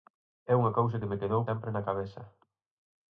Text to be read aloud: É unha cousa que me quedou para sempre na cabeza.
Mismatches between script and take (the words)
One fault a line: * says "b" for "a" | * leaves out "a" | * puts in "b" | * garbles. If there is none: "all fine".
* leaves out "para"